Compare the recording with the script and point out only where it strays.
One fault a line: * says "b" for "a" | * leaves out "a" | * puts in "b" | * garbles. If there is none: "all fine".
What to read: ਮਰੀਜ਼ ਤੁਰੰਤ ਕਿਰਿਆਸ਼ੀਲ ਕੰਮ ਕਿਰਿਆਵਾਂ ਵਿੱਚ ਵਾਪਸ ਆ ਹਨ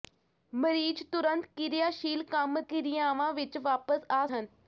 all fine